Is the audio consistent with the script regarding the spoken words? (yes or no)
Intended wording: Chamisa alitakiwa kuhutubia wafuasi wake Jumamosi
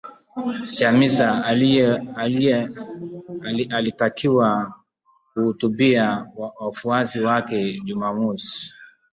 yes